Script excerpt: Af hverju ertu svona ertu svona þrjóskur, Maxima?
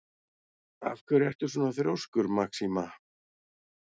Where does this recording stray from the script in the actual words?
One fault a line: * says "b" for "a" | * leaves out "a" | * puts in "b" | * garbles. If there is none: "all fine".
* leaves out "ertu svona"